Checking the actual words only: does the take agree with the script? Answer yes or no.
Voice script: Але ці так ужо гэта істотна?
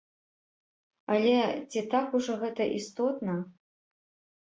yes